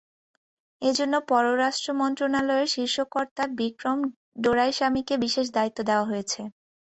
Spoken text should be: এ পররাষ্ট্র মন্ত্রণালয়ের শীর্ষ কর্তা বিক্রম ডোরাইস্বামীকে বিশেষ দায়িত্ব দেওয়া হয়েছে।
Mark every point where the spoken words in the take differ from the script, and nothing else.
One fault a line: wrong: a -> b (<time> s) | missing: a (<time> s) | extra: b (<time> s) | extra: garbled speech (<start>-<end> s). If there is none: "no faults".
extra: জন্য (1.0 s)